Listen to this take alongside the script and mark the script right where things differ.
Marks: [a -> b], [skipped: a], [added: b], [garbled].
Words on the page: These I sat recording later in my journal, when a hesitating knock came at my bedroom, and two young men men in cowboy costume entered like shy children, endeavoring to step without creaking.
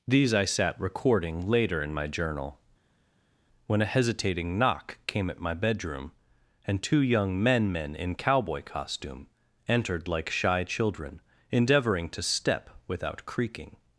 These I sat recording later in my journal, when a hesitating knock came at my bedroom, and two young men men in cowboy costume entered like shy children, endeavoring to step without creaking.